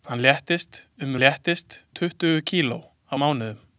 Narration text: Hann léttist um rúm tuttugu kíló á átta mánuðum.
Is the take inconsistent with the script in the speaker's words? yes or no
yes